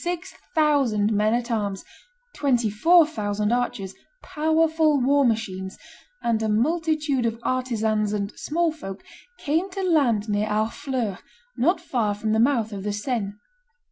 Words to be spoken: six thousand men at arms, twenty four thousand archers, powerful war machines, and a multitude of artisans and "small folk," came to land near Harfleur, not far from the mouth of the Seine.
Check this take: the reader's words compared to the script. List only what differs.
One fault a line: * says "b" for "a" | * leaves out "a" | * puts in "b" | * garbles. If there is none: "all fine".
all fine